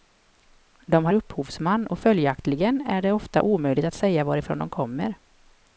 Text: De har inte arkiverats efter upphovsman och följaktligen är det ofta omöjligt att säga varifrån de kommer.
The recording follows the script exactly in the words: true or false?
false